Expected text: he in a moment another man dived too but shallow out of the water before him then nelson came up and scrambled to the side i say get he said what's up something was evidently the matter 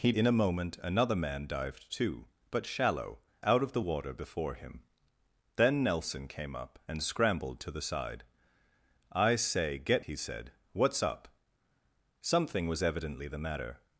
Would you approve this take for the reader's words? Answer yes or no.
yes